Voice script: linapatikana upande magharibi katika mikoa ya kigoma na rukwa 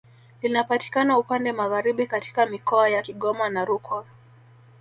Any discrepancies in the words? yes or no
no